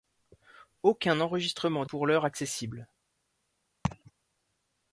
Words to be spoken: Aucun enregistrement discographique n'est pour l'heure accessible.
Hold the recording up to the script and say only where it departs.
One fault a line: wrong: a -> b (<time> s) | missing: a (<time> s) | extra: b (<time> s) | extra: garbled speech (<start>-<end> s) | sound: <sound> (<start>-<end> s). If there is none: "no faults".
missing: discographique n'est (1.9 s)
sound: laugh (3.8-4.1 s)